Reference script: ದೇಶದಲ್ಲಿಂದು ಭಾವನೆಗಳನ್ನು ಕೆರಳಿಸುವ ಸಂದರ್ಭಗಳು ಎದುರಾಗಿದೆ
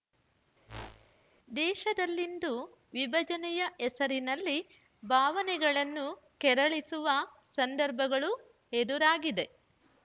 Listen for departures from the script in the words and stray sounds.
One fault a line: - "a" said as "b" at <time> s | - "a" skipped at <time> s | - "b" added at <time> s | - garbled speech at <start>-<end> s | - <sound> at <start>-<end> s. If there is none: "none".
- whoosh at 0.7-1.2 s
- "ವಿಭಜನೆಯ ಹೆಸರಿನಲ್ಲಿ" added at 2.9 s